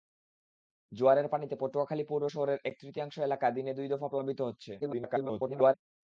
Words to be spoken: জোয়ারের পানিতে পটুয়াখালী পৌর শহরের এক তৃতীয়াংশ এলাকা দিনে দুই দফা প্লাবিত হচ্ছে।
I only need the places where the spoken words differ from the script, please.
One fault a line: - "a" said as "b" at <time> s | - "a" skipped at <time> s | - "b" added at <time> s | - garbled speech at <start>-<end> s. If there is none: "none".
- garbled speech at 4.8-5.7 s